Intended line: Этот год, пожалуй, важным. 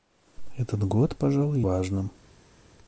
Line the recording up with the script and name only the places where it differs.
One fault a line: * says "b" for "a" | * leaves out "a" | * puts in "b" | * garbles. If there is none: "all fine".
all fine